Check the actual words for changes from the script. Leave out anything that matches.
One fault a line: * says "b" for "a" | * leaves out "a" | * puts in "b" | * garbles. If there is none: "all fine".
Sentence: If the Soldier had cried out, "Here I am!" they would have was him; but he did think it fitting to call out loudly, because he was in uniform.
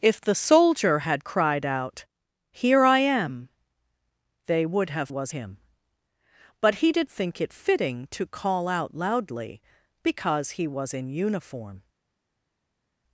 all fine